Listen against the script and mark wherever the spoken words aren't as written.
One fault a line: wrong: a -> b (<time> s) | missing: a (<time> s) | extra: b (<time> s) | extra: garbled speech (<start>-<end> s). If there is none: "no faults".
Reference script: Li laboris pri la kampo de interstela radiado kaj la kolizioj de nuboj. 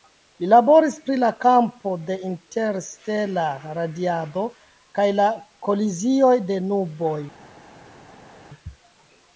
no faults